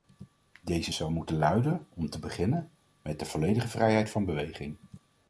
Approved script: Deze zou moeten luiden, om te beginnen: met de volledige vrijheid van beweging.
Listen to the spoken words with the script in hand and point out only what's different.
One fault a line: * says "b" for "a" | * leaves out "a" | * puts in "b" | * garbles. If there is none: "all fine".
all fine